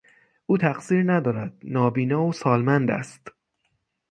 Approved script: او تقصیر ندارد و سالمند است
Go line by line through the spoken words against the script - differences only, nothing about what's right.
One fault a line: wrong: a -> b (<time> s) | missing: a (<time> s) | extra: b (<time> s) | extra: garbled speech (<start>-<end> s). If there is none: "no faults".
extra: نابینا (1.6 s)